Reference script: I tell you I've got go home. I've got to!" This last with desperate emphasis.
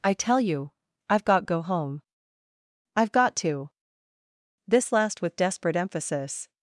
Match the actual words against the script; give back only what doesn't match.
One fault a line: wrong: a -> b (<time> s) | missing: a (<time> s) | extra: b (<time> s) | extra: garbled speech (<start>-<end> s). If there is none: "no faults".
no faults